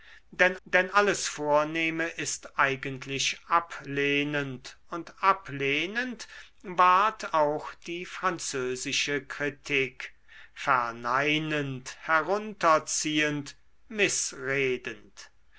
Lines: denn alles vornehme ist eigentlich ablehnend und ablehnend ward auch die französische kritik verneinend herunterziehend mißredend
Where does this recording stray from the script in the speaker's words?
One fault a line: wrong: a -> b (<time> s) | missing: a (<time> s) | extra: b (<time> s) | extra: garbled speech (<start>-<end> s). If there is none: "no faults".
extra: denn (0.6 s)